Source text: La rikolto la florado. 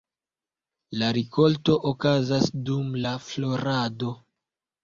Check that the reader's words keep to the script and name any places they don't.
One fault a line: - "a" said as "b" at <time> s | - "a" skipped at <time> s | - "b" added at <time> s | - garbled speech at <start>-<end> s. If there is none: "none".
- "okazas dum" added at 1.9 s